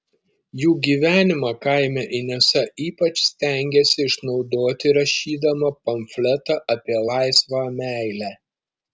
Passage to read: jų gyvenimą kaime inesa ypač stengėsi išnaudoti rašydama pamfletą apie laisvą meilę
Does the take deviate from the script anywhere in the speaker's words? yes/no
no